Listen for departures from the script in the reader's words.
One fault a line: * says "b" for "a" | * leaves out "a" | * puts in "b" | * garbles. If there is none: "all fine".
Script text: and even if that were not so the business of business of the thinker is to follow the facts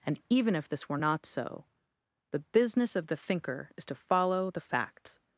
* says "this" for "that"
* leaves out "business of"